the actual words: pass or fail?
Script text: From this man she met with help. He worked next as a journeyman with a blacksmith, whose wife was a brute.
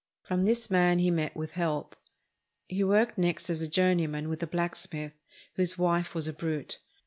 fail